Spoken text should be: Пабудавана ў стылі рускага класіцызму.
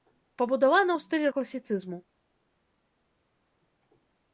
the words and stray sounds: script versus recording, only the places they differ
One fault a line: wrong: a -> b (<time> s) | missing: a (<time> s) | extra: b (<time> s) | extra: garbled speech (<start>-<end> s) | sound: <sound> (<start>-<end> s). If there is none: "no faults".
missing: рускага (1.3 s)